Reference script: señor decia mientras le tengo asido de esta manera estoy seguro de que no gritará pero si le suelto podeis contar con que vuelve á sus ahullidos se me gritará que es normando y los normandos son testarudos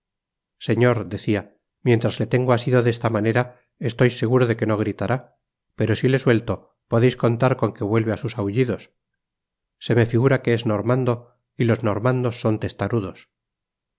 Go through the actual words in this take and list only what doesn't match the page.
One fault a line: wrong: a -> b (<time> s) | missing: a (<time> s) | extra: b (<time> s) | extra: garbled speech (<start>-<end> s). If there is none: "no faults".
wrong: gritará -> figura (10.1 s)